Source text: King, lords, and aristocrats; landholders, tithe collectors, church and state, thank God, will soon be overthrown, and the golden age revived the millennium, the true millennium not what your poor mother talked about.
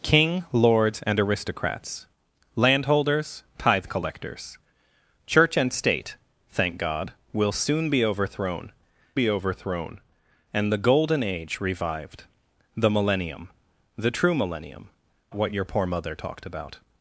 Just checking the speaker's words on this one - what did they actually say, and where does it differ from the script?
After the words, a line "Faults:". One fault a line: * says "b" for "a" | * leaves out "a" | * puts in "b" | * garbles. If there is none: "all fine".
King, lords, and aristocrats; landholders, tithe collectors, church and state, thank God, will soon be overthrown be overthrown, and the golden age revived the millennium, the true millennium what your poor mother talked about.
Faults:
* puts in "be overthrown"
* leaves out "not"